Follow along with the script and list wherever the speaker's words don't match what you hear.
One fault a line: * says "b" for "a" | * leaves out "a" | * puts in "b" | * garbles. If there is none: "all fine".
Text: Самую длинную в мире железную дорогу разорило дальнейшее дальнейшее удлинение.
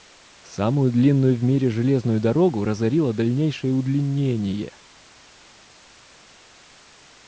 * leaves out "дальнейшее"